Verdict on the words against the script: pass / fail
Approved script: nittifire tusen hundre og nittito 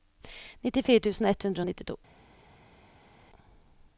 fail